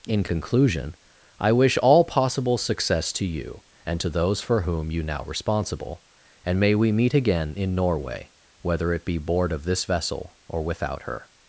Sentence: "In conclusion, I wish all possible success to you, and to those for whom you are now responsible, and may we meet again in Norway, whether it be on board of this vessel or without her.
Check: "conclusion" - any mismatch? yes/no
no